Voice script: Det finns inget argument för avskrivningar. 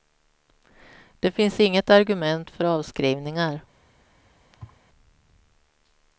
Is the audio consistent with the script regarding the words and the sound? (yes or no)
no